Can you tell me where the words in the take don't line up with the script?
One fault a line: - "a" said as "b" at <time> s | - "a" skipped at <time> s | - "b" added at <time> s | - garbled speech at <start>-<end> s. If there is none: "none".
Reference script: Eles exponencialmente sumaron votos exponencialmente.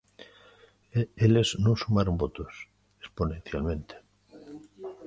- "exponencialmente" said as "non" at 1.6 s